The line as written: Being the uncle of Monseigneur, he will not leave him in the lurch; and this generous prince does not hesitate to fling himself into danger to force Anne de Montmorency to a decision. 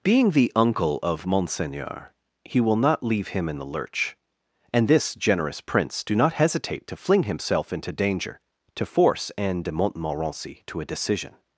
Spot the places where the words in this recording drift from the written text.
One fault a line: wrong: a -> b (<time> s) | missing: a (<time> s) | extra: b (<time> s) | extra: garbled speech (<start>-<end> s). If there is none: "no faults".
wrong: does -> do (6.0 s)